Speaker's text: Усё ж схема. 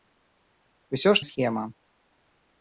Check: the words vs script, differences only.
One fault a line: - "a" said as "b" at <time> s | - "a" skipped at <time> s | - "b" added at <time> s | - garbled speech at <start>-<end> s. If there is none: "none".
none